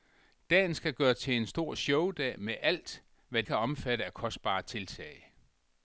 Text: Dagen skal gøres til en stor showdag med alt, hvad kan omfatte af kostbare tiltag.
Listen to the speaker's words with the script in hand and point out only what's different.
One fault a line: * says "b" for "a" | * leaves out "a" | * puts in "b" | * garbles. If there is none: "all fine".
all fine